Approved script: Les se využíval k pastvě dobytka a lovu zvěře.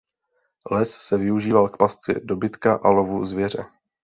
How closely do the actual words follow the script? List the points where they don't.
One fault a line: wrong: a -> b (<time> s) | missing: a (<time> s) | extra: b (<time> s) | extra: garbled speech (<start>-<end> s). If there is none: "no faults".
no faults